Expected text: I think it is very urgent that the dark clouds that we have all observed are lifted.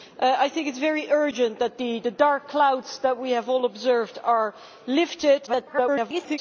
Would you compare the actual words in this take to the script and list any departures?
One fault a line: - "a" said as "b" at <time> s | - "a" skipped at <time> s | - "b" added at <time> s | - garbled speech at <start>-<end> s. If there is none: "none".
- garbled speech at 5.5-6.4 s